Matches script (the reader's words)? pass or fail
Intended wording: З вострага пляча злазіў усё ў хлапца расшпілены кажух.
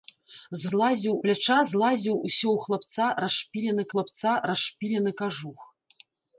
fail